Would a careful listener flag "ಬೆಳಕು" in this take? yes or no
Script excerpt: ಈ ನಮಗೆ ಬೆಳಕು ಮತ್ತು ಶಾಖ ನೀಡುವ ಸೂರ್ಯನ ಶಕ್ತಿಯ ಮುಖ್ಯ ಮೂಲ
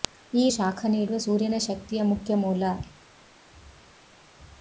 yes